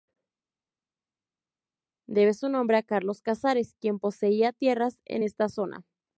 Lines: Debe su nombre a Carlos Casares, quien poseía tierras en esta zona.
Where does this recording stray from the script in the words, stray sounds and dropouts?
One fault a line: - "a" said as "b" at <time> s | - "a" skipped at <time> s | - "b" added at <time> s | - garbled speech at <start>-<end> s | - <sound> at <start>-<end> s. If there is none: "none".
none